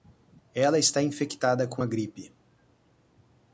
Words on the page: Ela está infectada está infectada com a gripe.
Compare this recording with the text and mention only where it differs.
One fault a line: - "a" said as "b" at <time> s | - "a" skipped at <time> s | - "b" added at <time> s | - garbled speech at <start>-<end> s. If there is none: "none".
- "está infectada" skipped at 1.7 s